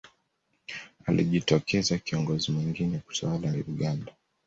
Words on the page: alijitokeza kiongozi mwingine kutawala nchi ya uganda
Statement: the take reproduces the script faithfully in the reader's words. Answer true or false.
false